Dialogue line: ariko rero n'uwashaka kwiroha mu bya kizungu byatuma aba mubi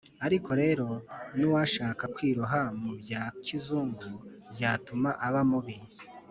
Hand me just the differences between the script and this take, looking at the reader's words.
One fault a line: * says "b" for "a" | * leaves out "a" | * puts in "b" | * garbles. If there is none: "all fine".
all fine